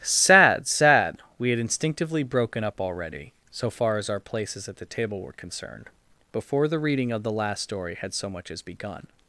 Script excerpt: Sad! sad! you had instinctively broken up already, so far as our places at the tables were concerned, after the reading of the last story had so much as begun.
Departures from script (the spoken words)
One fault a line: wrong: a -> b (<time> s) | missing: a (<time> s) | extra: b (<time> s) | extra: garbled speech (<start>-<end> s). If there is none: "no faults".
wrong: you -> we (1.4 s)
wrong: tables -> table (4.9 s)
wrong: after -> before (6.3 s)